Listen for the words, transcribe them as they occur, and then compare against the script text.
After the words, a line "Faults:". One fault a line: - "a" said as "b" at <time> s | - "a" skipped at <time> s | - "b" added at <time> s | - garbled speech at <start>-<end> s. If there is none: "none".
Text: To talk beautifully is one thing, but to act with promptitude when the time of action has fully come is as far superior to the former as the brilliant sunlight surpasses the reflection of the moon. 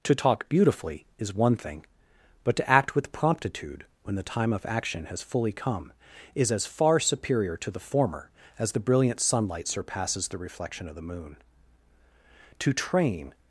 To talk beautifully is one thing, but to act with promptitude when the time of action has fully come is as far superior to the former as the brilliant sunlight surpasses the reflection of the moon. To train
Faults:
- "To train" added at 12.6 s